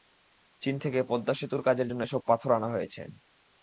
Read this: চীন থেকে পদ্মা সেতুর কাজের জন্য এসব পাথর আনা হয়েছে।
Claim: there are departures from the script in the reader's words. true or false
false